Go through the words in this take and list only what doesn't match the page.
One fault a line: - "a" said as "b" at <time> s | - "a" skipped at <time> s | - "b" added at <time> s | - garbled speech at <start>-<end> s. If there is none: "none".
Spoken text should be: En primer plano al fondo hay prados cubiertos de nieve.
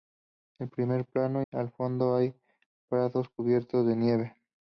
none